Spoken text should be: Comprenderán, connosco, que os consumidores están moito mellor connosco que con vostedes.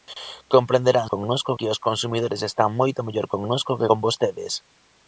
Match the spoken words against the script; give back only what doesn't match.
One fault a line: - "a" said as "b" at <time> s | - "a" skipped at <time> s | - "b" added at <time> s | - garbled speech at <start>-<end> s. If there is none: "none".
none